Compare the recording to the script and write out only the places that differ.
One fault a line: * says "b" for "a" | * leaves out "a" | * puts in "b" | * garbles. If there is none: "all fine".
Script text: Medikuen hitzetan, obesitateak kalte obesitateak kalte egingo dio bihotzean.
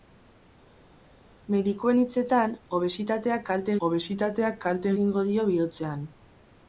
all fine